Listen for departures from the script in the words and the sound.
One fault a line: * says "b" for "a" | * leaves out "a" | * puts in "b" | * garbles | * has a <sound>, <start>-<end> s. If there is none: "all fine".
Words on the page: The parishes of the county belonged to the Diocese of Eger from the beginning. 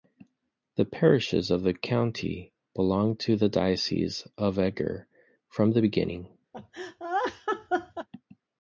* has a laugh, 6.5-8.1 s